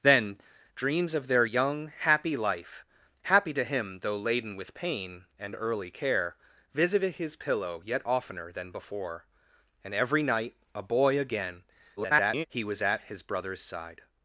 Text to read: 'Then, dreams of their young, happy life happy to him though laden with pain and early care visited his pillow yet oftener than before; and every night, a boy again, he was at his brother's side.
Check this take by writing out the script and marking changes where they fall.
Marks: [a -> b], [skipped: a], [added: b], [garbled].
'Then, dreams of their young, happy life happy to him though laden with pain and early care visited his pillow yet oftener than before; and every night, a boy again, [garbled] he was at his brother's side.